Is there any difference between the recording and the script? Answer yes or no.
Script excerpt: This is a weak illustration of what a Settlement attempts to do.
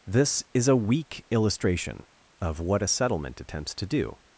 no